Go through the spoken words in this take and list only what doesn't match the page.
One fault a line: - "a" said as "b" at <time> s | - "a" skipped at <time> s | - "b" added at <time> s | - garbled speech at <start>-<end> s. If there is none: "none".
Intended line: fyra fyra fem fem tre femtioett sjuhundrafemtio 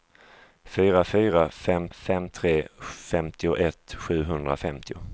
none